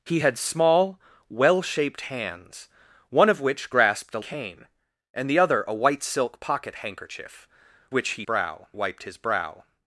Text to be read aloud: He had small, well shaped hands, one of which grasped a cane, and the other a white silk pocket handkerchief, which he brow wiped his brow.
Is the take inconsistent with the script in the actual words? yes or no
no